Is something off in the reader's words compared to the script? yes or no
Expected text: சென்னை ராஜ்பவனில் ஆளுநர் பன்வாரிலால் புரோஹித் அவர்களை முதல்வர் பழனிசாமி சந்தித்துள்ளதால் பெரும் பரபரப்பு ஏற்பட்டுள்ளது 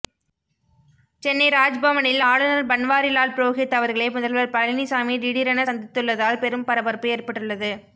yes